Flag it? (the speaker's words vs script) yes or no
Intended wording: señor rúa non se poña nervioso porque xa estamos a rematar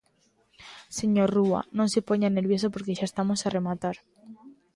no